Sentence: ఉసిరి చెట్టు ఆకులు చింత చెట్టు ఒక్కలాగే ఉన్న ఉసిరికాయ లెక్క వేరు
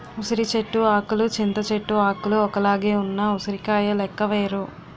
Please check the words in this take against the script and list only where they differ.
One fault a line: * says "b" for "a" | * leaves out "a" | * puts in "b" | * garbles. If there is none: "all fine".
* puts in "ఆకులు"